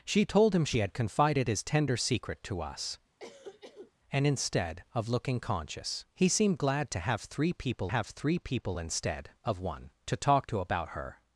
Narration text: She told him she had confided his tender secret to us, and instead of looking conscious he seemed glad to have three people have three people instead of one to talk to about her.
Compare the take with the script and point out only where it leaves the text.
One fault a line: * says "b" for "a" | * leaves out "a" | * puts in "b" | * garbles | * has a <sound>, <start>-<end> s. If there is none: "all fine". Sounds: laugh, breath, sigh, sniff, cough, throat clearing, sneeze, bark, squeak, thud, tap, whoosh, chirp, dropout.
* has a cough, 3.2-3.9 s